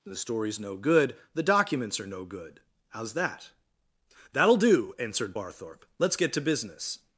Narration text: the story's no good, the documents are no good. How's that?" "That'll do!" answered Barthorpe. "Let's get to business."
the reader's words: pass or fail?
pass